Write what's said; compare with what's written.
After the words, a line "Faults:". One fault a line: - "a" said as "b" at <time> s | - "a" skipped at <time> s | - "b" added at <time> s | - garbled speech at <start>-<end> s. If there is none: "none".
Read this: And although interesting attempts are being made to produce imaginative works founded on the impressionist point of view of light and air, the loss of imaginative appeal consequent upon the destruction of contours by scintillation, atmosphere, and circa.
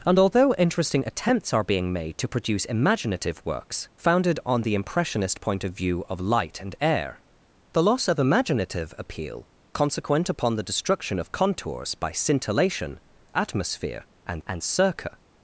And although interesting attempts are being made to produce imaginative works founded on the impressionist point of view of light and air, the loss of imaginative appeal consequent upon the destruction of contours by scintillation, atmosphere, and and circa.
Faults:
- "and" added at 14.5 s